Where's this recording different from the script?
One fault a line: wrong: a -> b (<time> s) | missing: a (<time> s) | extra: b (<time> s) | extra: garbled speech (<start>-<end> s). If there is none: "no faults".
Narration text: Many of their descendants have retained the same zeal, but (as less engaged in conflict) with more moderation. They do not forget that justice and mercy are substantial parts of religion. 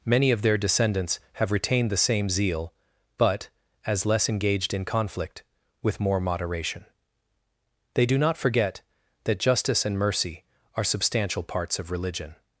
no faults